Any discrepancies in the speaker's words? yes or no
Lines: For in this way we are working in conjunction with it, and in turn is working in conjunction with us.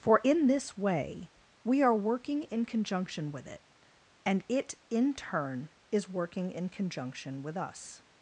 yes